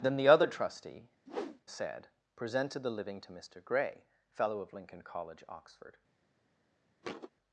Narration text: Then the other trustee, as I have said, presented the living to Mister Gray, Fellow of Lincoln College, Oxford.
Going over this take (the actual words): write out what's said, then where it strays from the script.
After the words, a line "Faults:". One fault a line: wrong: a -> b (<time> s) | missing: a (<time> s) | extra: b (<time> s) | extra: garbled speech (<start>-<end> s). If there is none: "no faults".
Then the other trustee, said, presented the living to Mister Gray, Fellow of Lincoln College, Oxford.
Faults:
missing: as I have (1.1 s)